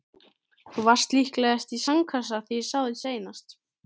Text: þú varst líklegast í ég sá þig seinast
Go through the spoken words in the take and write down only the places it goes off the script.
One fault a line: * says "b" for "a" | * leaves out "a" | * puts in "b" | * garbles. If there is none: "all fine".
* puts in "sandkassa þegar"